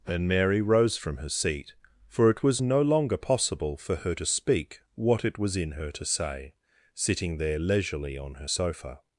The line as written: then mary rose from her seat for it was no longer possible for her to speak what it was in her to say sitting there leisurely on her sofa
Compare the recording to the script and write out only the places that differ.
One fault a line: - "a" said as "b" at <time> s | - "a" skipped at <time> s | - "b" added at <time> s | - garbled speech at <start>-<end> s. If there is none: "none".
- "then" said as "and" at 0.1 s